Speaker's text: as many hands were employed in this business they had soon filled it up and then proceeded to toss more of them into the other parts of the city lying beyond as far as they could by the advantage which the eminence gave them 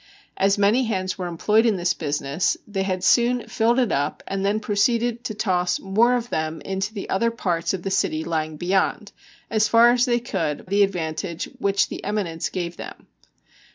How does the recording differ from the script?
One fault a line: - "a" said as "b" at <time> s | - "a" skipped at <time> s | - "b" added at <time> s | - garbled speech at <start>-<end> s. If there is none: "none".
- "by" skipped at 10.7 s